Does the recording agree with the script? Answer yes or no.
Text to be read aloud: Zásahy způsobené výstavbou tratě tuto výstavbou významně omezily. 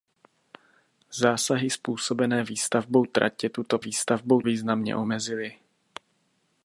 yes